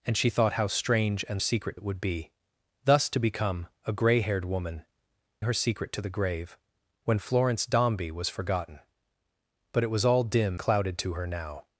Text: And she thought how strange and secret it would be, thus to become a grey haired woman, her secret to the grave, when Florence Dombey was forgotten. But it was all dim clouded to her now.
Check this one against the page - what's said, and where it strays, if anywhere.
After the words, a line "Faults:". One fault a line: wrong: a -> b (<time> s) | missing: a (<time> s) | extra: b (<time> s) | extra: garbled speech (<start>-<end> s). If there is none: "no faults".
And she thought how strange and secret it would be, thus to become a grey haired woman, her secret to the grave, when Florence Dombey was forgotten. But it was all dim clouded to her now.
Faults:
no faults